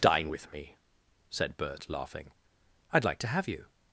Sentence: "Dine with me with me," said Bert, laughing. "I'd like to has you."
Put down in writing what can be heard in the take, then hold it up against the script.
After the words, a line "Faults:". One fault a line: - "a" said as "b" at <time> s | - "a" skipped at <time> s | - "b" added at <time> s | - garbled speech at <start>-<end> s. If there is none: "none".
"Dine with me," said Bert, laughing. "I'd like to have you."
Faults:
- "with me" skipped at 0.8 s
- "has" said as "have" at 3.3 s